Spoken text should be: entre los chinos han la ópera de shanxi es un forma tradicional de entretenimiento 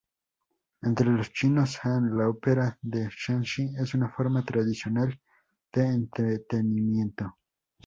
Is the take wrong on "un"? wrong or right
wrong